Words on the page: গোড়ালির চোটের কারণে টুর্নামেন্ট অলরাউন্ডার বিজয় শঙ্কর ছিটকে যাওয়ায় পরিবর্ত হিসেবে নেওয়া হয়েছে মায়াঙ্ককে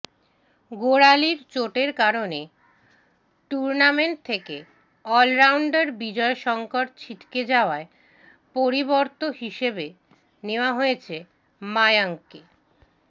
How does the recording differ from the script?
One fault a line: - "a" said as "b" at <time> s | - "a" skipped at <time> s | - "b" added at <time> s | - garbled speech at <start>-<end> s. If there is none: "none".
- "থেকে" added at 4.2 s